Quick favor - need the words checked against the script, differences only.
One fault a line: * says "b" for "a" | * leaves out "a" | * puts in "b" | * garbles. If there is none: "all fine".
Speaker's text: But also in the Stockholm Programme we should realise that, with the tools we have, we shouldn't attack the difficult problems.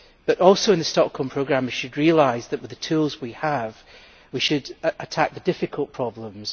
* says "should" for "shouldn't"